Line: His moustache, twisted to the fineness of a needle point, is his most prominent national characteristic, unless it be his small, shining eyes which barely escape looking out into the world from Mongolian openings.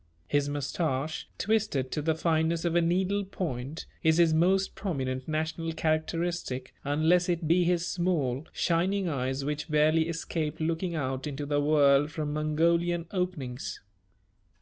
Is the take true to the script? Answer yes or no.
yes